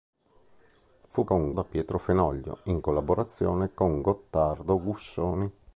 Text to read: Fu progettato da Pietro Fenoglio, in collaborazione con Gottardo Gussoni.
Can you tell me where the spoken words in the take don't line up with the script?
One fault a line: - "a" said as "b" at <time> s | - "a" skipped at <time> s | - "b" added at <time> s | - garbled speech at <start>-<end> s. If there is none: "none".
- "progettato" said as "con" at 1.2 s